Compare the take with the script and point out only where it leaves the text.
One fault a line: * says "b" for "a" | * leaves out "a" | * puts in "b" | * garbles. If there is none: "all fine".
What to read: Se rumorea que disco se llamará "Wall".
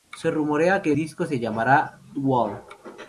all fine